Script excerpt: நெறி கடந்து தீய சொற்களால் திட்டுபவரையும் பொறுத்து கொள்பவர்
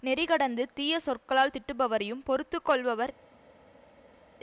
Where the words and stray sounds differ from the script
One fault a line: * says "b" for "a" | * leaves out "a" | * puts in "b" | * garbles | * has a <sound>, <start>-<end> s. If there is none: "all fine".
all fine